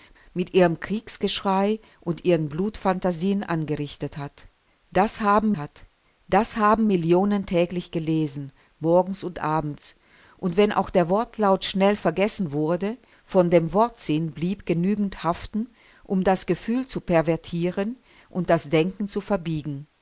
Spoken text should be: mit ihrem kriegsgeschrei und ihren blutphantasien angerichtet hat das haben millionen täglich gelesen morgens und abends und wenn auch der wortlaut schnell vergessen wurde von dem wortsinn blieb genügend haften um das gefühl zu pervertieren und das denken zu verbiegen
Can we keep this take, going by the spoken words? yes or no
no